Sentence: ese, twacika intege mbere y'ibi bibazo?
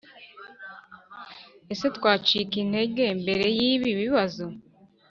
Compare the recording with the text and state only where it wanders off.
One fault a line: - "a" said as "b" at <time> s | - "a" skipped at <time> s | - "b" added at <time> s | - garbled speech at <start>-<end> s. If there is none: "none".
none